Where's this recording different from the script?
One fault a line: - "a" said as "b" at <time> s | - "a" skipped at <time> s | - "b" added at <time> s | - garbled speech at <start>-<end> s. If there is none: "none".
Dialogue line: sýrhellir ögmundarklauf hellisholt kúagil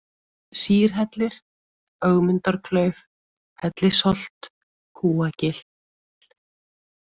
none